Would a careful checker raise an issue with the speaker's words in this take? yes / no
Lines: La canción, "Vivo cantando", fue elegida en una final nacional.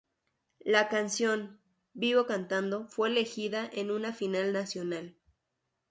no